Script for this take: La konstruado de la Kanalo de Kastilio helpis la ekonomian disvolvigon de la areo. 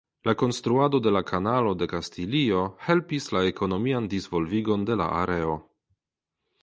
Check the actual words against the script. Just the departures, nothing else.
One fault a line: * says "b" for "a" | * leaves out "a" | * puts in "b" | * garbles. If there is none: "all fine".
all fine